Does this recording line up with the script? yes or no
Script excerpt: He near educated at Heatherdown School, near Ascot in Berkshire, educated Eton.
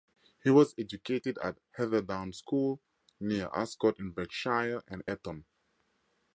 no